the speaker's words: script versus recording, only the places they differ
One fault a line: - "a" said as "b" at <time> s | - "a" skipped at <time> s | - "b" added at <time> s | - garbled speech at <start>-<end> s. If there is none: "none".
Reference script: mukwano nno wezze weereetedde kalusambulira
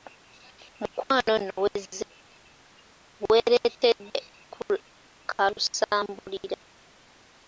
none